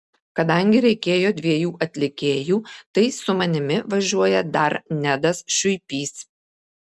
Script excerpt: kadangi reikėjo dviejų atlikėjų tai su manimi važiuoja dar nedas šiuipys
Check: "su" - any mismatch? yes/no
no